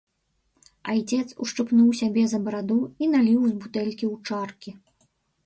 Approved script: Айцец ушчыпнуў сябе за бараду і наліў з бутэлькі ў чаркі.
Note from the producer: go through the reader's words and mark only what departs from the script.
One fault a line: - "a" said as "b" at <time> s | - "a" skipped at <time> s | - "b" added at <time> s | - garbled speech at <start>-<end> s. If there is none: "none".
none